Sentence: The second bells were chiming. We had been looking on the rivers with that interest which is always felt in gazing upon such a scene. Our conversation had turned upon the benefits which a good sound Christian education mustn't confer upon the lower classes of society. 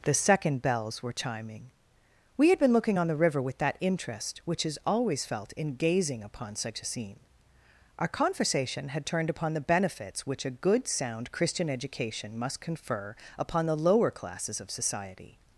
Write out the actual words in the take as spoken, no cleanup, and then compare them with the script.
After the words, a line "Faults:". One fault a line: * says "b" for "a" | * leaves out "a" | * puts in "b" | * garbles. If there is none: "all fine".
The second bells were chiming. We had been looking on the river with that interest which is always felt in gazing upon such a scene. Our conversation had turned upon the benefits which a good sound Christian education must confer upon the lower classes of society.
Faults:
* says "river" for "rivers"
* says "must" for "mustn't"